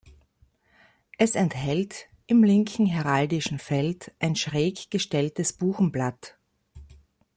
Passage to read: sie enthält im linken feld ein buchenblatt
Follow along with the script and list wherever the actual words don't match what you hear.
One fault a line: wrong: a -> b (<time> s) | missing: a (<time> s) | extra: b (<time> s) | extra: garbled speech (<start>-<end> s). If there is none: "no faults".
wrong: sie -> es (1.2 s)
extra: heraldischen (2.9 s)
extra: schräg gestelltes (4.4 s)